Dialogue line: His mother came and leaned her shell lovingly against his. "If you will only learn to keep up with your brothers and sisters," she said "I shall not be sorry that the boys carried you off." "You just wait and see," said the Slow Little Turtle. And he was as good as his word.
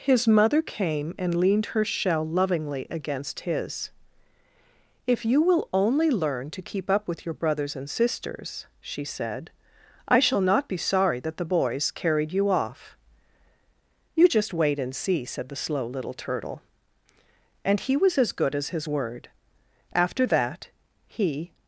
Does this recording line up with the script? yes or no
no